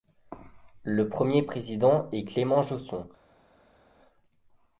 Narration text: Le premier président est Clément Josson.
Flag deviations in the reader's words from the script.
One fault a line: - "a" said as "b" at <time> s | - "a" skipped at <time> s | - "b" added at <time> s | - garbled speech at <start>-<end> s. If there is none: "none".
none